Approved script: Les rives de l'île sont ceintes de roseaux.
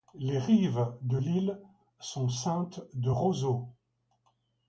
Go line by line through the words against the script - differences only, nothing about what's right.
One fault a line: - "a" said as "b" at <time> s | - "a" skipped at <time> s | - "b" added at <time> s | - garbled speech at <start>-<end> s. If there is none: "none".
none